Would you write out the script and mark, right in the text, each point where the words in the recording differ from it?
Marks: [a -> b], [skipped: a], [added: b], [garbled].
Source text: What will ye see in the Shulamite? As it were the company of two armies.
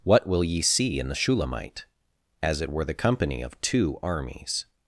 What will ye see in the Shulamite? As it were the company of two armies.